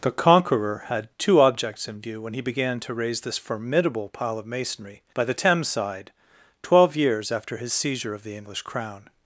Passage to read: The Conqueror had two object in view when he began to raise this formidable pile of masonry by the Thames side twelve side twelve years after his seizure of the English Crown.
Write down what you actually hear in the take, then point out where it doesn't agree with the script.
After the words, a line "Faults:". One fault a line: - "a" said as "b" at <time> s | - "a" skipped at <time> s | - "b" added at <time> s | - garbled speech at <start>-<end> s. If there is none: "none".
The Conqueror had two objects in view when he began to raise this formidable pile of masonry by the Thames side twelve years after his seizure of the English Crown.
Faults:
- "object" said as "objects" at 1.4 s
- "side twelve" skipped at 7.0 s